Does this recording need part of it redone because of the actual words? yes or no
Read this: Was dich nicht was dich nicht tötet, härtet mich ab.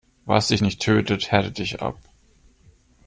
yes